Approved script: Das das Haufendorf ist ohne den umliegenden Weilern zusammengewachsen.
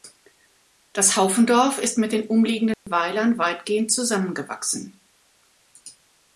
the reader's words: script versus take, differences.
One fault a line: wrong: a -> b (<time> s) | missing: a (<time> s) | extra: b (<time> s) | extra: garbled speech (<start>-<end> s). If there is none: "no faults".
missing: das (1.2 s)
wrong: ohne -> mit (2.0 s)
extra: weitgehend (3.4 s)